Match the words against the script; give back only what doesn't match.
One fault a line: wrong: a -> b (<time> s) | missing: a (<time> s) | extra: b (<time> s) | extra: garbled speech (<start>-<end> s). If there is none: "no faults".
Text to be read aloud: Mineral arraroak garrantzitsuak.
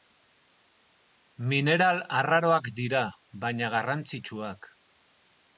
extra: dira baina (2.8 s)